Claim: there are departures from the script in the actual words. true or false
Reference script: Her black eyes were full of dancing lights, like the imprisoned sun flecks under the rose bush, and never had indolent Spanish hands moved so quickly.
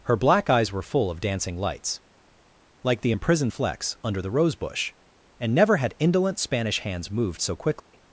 true